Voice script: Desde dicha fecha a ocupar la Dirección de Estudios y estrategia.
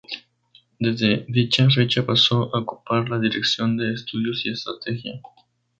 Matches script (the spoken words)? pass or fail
fail